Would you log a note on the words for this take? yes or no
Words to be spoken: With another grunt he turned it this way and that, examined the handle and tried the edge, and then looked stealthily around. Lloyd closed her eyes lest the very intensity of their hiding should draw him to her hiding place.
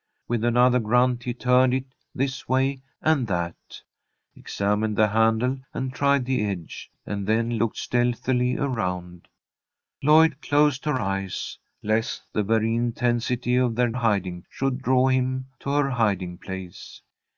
no